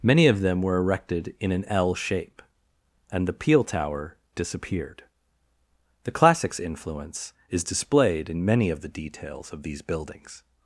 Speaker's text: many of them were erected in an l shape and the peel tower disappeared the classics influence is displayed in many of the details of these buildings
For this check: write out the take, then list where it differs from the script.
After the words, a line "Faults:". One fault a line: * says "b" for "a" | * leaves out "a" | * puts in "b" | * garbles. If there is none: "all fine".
many of them were erected in an l shape and the peel tower disappeared the classics influence is displayed in many of the details of these buildings
Faults:
all fine